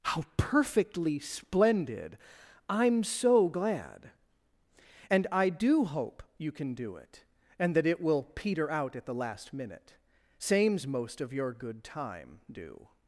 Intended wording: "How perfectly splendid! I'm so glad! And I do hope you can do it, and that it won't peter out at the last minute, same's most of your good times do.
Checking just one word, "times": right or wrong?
wrong